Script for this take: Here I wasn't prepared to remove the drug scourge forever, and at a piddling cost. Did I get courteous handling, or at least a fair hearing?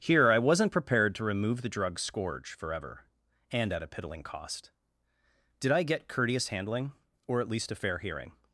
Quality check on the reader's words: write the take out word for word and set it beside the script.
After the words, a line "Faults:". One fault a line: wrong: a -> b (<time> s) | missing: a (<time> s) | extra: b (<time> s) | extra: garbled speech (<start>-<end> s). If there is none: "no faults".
Here I wasn't prepared to remove the drug scourge forever, and at a piddling cost. Did I get courteous handling, or at least a fair hearing?
Faults:
no faults